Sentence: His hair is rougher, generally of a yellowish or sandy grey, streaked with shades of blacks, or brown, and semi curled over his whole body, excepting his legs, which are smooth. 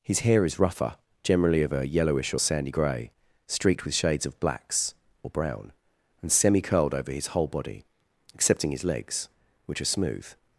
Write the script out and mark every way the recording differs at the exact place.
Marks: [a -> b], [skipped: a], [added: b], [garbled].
His hair is rougher, generally of a yellowish or sandy grey, streaked with shades of blacks, or brown, and semi curled over his whole body, excepting his legs, which are smooth.